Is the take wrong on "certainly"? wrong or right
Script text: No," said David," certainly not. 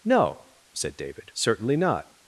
right